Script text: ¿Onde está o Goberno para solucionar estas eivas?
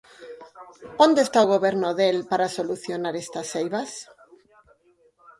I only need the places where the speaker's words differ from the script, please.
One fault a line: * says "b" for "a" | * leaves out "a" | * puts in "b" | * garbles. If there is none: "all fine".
* puts in "del"